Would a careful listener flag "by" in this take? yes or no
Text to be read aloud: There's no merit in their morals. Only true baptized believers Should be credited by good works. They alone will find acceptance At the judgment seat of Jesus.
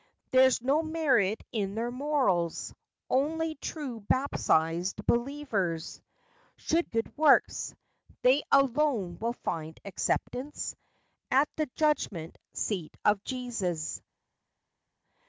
yes